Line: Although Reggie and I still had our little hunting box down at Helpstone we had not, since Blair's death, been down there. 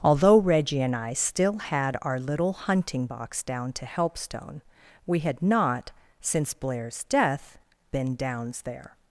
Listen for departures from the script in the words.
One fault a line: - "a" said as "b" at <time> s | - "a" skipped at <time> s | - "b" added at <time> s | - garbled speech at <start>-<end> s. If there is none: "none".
- "at" said as "to" at 3.7 s
- "down" said as "downs" at 8.2 s